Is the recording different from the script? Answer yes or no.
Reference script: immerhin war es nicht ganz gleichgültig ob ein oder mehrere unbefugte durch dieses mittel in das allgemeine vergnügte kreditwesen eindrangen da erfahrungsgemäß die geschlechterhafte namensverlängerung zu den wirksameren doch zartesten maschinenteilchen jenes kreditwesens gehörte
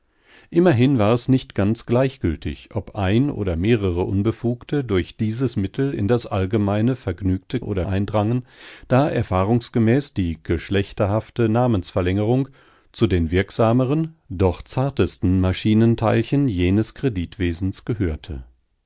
yes